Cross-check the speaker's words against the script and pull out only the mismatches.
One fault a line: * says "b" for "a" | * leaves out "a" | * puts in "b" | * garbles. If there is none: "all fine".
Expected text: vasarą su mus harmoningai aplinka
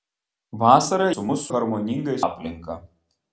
all fine